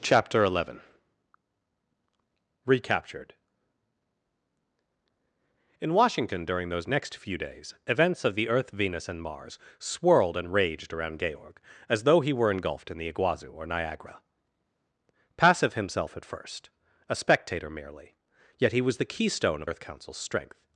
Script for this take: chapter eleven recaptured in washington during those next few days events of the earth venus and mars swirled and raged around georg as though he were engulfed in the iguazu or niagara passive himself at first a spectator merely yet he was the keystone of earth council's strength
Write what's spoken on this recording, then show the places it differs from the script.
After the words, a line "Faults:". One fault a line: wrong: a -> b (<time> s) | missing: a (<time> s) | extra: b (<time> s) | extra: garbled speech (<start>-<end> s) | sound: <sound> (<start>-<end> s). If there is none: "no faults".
chapter eleven recaptured in washington during those next few days events of the earth venus and mars swirled and raged around georg as though he were engulfed in the iguazu or niagara passive himself at first a spectator merely yet he was the keystone of earth council's strength
Faults:
no faults